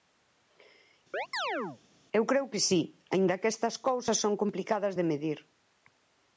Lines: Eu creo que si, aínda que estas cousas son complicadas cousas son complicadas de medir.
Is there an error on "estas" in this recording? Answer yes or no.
no